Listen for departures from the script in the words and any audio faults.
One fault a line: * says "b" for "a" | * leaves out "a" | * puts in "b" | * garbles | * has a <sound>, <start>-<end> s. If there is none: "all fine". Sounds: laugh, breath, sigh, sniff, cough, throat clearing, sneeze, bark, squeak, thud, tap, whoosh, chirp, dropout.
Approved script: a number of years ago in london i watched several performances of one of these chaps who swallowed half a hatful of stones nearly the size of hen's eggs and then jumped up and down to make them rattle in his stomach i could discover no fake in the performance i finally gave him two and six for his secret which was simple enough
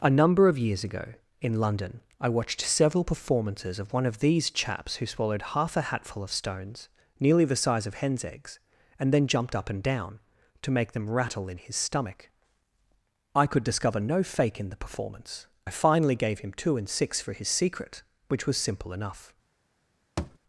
* has a thud, 20.2-20.4 s